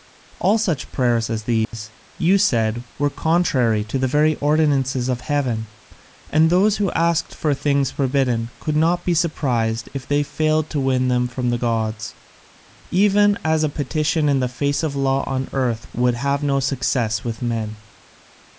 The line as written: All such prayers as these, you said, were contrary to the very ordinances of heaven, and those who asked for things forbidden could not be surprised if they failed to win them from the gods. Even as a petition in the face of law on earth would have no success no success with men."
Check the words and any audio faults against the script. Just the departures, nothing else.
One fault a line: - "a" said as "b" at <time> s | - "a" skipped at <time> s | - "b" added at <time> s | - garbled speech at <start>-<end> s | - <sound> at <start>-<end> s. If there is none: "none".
- dropout at 1.6-1.7 s
- "no success" skipped at 17.2 s